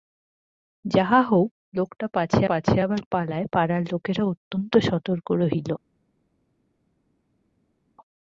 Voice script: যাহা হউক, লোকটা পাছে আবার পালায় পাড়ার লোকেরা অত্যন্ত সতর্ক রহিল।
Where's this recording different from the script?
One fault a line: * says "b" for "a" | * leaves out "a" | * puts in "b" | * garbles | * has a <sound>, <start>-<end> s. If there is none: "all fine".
* puts in "পাছে"